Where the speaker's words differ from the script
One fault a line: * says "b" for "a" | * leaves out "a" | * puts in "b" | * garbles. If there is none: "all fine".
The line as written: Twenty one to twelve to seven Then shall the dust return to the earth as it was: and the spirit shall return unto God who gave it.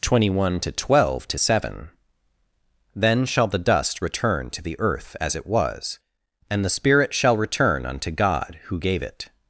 all fine